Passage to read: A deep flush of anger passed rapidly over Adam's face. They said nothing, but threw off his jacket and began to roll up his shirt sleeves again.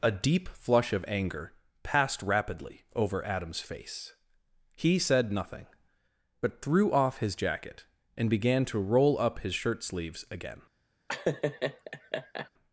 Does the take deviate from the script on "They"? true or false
true